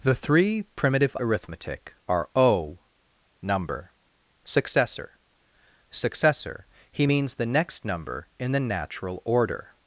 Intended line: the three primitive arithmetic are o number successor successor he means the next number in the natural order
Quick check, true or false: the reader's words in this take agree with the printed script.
true